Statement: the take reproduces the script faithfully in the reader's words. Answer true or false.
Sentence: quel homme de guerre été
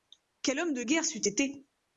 false